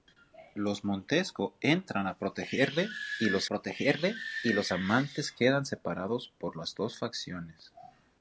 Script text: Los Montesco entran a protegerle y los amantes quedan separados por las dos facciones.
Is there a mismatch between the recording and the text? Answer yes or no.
yes